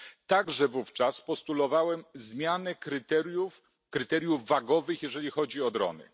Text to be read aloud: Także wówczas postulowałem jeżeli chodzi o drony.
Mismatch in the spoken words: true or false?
true